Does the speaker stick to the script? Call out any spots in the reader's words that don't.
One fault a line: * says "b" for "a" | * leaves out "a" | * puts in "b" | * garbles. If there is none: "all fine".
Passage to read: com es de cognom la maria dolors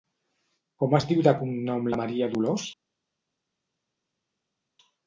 * puts in "diu"